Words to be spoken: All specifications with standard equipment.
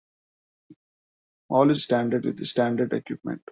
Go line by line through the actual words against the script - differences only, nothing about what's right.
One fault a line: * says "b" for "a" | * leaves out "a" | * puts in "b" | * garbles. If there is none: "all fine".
* says "standard" for "specifications"